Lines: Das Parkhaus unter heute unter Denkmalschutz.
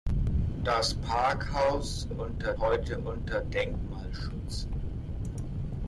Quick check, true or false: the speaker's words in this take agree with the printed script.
true